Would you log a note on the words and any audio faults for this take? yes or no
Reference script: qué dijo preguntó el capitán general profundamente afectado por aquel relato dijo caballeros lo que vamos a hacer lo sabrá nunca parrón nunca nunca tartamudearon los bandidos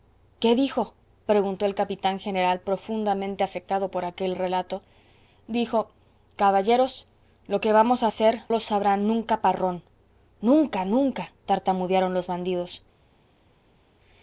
no